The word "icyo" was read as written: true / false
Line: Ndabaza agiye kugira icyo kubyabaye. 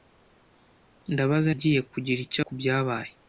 true